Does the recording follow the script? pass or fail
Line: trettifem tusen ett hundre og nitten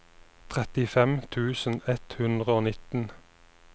pass